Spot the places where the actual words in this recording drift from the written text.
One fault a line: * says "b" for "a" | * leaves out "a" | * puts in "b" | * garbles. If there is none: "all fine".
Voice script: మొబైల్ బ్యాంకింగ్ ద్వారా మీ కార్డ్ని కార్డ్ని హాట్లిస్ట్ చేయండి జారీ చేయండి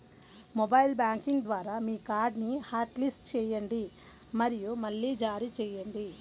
* leaves out "కార్డ్ని"
* puts in "మరియు మళ్లీ"